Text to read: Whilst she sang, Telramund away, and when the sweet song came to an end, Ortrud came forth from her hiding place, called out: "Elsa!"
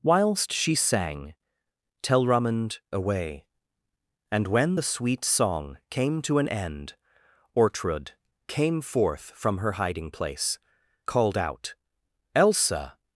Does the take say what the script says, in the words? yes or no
yes